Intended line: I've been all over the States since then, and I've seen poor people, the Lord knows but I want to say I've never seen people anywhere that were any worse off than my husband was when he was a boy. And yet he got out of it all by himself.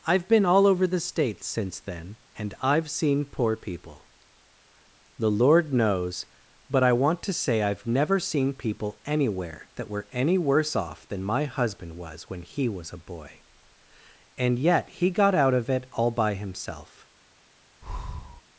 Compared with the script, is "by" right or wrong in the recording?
right